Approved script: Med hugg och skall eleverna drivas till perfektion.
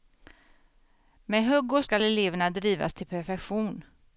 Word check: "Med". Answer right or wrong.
right